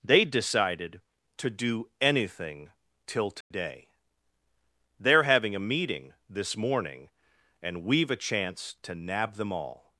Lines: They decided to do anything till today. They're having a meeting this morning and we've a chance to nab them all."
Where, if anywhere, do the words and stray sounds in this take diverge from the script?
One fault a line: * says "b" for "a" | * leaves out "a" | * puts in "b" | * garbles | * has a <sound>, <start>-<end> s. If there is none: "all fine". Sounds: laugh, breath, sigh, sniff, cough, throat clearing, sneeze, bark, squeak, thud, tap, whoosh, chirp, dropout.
* has a dropout, 3.4-3.5 s